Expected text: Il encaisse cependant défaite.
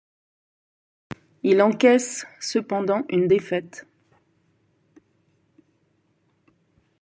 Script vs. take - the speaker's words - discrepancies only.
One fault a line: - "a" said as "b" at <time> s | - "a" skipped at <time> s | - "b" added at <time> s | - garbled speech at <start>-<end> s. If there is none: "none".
- "une" added at 3.1 s